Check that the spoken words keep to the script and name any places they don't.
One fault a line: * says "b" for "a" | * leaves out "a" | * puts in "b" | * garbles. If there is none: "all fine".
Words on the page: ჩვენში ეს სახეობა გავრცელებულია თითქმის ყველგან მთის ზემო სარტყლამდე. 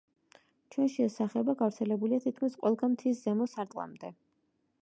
all fine